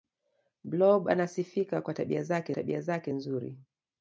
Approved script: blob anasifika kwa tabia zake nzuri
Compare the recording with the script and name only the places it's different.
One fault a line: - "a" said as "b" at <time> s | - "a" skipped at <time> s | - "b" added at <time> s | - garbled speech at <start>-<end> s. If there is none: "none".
- "tabia zake" added at 2.5 s